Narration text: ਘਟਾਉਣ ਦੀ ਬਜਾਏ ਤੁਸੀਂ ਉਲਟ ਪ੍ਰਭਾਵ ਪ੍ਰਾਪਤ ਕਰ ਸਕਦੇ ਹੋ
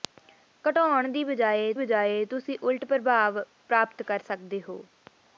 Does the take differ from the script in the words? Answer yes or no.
yes